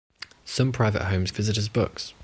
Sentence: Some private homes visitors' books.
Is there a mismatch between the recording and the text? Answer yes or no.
no